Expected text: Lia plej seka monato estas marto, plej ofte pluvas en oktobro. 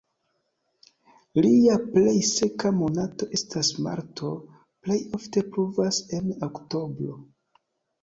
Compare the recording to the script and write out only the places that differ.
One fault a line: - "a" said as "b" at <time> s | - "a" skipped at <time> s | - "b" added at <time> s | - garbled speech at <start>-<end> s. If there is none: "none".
none